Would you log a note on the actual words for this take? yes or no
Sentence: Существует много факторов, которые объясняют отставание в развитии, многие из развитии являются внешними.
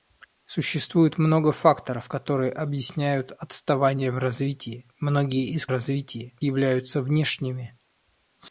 no